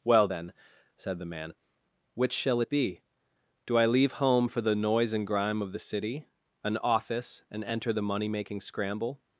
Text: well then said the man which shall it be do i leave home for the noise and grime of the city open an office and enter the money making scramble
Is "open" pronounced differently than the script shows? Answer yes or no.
yes